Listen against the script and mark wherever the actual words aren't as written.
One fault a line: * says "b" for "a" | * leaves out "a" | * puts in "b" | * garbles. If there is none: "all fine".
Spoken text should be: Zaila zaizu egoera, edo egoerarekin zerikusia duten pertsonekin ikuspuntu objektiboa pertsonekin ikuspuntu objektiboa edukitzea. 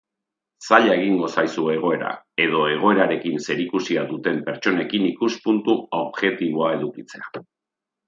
* puts in "egingo"
* leaves out "pertsonekin ikuspuntu objektiboa"